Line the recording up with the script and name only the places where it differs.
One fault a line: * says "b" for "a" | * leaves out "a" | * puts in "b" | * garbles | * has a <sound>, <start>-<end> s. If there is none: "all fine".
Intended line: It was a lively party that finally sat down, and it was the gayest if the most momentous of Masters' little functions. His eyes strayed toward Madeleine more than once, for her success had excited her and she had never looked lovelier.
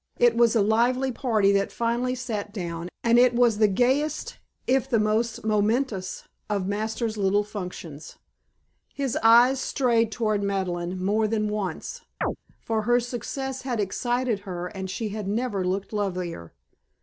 * has a chirp, 12.2-12.4 s